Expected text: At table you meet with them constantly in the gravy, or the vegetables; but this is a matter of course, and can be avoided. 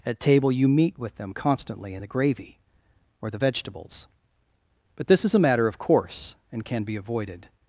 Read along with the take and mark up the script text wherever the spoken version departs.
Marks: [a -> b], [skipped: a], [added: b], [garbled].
At table you meet with them constantly in the gravy, or the vegetables; but this is a matter of course, and can be avoided.